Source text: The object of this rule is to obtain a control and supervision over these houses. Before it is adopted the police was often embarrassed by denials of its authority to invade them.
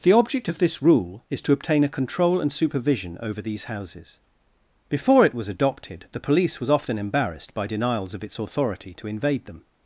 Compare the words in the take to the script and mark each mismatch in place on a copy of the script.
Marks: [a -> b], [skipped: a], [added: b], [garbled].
The object of this rule is to obtain a control and supervision over these houses. Before it [is -> was] adopted the police was often embarrassed by denials of its authority to invade them.